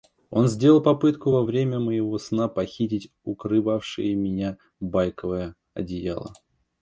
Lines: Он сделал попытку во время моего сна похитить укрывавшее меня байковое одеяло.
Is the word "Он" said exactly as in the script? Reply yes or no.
yes